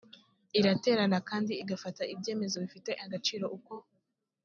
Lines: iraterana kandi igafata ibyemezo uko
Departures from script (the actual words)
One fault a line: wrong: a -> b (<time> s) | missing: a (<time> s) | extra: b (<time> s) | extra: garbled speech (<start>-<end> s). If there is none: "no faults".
extra: bifite agaciro (2.6 s)